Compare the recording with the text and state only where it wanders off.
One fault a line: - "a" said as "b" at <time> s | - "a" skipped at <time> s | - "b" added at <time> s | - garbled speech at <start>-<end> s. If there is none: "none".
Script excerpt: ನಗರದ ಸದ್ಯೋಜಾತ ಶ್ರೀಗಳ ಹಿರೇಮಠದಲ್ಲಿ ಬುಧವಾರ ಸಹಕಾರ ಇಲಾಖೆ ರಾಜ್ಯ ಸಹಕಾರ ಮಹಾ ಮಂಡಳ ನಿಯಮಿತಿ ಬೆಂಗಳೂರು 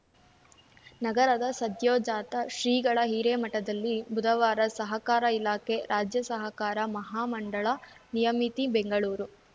none